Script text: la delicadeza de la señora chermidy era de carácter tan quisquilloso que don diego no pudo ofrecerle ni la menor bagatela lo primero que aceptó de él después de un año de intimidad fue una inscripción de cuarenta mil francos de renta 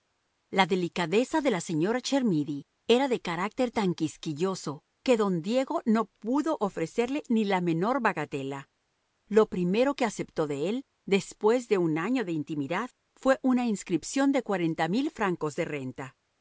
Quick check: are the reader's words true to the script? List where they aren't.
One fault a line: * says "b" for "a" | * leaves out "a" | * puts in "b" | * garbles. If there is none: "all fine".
all fine